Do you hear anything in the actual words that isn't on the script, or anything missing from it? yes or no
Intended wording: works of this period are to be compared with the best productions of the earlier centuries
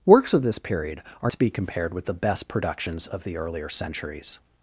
no